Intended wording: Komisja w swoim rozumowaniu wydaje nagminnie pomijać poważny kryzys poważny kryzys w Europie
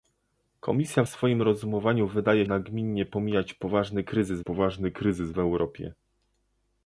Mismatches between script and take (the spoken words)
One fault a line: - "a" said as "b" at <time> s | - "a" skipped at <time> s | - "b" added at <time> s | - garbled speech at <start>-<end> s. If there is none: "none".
none